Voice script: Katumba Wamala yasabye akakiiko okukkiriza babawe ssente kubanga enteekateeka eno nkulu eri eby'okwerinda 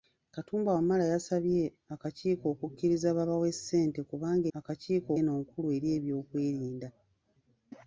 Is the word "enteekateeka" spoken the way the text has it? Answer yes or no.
no